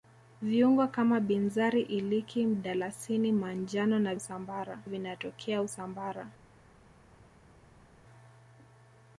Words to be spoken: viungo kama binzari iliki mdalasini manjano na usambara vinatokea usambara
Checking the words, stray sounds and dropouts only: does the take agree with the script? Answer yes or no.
yes